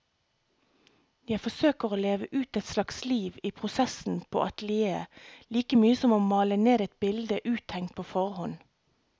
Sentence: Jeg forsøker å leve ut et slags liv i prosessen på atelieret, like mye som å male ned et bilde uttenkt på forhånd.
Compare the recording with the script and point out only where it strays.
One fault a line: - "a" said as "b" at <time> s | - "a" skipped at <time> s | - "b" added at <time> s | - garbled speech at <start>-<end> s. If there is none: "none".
none